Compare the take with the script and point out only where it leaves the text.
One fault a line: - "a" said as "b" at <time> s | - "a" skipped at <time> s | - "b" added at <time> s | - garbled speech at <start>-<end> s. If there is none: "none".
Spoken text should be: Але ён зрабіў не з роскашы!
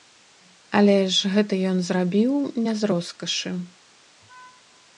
- "ж гэта" added at 1.2 s